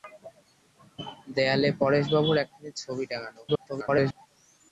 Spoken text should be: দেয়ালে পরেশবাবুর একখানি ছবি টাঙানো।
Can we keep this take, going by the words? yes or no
no